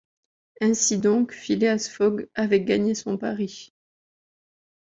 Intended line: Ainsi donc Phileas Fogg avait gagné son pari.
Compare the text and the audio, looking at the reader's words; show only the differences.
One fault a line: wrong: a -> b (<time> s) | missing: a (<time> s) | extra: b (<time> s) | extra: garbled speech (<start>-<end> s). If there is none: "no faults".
no faults